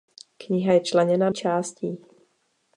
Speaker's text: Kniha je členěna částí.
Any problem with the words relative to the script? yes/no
no